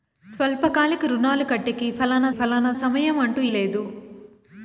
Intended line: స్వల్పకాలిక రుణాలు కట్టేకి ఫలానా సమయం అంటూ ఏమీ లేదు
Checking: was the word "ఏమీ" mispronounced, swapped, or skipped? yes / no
yes